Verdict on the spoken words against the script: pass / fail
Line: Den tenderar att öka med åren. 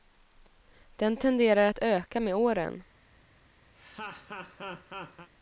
pass